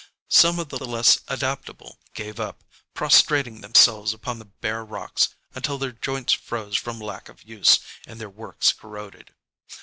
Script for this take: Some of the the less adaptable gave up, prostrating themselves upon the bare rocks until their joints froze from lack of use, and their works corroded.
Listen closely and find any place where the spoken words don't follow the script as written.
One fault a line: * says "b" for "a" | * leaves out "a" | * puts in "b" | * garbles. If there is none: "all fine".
all fine